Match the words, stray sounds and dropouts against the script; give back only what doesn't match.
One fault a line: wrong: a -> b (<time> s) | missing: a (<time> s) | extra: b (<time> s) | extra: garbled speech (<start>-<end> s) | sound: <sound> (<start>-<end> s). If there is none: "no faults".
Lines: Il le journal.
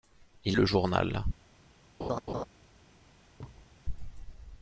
sound: laugh (2.0-2.5 s)
sound: thud (3.4-3.8 s)